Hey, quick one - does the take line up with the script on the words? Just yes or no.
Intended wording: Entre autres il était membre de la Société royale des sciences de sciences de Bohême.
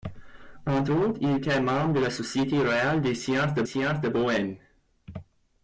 yes